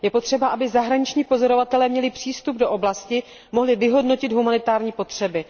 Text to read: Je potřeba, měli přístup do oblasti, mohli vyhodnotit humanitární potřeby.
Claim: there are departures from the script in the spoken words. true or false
true